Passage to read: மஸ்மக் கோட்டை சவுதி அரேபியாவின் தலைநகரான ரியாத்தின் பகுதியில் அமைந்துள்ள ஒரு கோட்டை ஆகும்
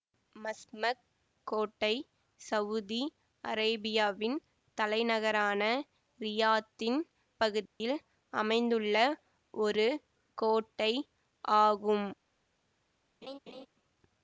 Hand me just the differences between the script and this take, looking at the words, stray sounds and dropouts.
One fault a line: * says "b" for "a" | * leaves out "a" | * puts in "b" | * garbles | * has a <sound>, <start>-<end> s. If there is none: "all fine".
* has a dropout, 7.7-7.8 s
* has a laugh, 13.2-13.7 s